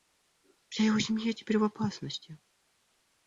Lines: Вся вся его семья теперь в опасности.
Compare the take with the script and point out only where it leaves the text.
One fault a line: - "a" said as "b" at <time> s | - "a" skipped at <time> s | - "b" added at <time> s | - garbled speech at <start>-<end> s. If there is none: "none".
- "вся" skipped at 0.8 s